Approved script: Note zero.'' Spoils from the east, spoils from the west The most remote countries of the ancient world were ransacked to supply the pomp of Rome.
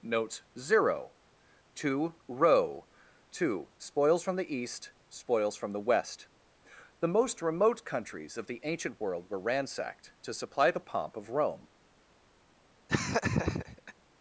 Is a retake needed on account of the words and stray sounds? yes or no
yes